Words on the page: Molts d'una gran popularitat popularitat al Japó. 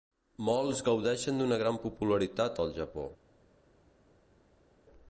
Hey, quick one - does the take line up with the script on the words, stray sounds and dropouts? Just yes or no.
no